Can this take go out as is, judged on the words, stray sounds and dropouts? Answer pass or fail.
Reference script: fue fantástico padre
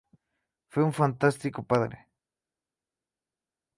fail